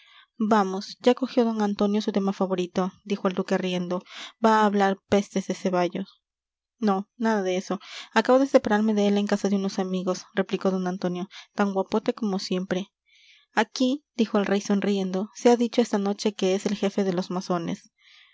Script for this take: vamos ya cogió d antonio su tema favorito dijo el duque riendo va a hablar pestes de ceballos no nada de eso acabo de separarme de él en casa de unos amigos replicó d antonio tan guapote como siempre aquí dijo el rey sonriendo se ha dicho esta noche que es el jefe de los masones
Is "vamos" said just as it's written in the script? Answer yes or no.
yes